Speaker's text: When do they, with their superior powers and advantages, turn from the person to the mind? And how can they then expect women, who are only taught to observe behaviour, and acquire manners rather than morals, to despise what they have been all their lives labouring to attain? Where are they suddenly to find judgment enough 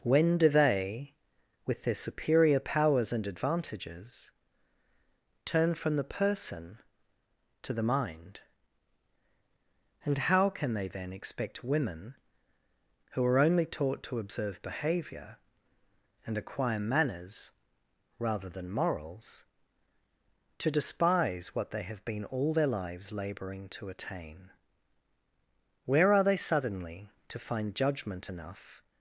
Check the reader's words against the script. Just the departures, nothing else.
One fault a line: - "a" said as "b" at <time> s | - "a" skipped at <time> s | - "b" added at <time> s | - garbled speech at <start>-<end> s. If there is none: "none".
none